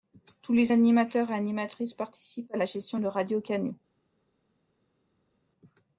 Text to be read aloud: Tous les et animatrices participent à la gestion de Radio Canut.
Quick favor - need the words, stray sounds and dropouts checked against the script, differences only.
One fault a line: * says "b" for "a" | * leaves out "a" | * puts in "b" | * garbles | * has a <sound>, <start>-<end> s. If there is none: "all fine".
* puts in "animateurs"